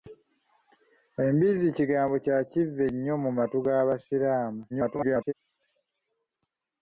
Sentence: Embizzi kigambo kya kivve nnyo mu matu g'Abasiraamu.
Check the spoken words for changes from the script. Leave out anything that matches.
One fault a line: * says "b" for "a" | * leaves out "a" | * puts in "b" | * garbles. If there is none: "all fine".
* garbles